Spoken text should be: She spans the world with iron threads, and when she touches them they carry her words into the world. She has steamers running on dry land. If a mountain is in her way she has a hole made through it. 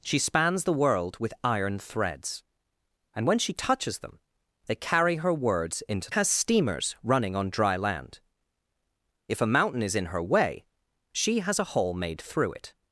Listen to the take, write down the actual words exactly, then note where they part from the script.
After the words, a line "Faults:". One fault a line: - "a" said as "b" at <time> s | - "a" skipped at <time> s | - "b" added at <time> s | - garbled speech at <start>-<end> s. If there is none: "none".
She spans the world with iron threads, and when she touches them they carry her words into has steamers running on dry land. If a mountain is in her way she has a hole made through it.
Faults:
- "the world She" skipped at 6.1 s